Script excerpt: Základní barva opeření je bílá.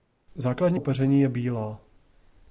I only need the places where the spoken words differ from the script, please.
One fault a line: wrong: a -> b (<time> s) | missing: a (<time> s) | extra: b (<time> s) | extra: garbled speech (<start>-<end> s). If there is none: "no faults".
missing: barva (0.8 s)